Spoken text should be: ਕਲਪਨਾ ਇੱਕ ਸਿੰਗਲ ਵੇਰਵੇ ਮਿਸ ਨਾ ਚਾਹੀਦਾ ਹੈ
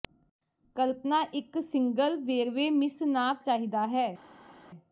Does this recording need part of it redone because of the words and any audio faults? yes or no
no